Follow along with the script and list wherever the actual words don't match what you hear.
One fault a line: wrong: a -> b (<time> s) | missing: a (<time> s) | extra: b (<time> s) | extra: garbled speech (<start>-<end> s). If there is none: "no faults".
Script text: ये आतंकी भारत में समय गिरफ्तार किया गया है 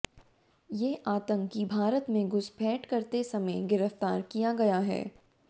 extra: घुसपैठ करते (2.3 s)